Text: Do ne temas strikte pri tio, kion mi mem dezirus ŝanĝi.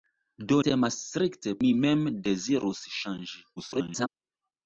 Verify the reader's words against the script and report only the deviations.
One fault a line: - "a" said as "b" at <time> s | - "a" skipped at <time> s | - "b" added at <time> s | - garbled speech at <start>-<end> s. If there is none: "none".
- "ne" skipped at 0.6 s
- "pri tio kion" skipped at 1.5 s
- garbled speech at 3.6-4.1 s